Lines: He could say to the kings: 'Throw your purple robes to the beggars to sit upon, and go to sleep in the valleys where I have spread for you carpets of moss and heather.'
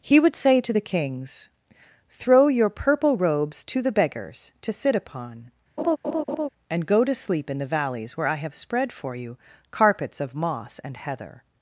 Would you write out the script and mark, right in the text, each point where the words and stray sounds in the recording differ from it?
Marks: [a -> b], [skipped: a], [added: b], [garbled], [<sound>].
He [could -> would] say to the kings: 'Throw your purple robes to the beggars to sit upon, [laugh] and go to sleep in the valleys where I have spread for you carpets of moss and heather.'